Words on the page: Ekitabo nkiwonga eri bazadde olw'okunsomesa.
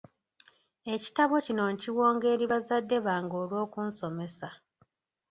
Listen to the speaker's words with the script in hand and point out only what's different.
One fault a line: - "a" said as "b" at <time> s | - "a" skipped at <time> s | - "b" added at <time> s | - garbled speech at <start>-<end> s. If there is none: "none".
- "kino" added at 1.5 s
- "bange" added at 3.1 s